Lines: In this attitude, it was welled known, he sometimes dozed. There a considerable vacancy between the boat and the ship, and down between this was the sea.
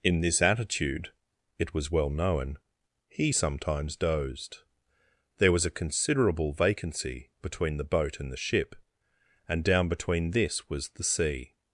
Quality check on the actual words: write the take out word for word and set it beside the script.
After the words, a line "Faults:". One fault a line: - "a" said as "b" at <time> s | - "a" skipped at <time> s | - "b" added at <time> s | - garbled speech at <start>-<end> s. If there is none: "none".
In this attitude, it was well known, he sometimes dozed. There was a considerable vacancy between the boat and the ship, and down between this was the sea.
Faults:
- "welled" said as "well" at 1.9 s
- "was" added at 5.5 s